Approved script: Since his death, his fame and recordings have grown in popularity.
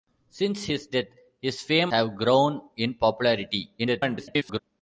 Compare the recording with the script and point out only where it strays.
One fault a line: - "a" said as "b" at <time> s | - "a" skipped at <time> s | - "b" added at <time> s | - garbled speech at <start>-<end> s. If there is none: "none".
- "and recordings" skipped at 1.9 s
- garbled speech at 3.8-4.6 s